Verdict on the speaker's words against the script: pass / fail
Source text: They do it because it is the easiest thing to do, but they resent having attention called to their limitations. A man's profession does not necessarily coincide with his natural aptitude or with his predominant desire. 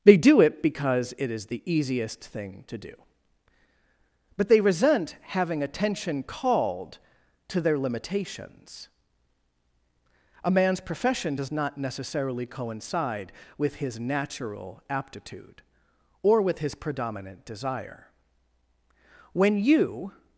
fail